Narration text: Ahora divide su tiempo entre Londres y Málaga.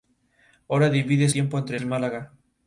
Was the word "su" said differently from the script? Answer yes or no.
yes